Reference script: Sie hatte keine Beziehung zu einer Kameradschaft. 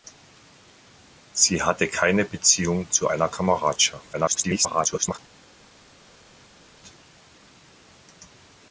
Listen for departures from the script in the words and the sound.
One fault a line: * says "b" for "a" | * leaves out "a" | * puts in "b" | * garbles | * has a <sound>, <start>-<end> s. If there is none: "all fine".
* garbles